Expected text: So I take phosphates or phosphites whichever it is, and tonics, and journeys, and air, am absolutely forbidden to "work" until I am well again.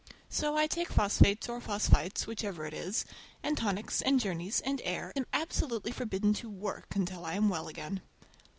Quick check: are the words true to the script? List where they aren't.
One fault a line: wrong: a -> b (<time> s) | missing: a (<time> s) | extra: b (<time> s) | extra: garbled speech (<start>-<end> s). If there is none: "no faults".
no faults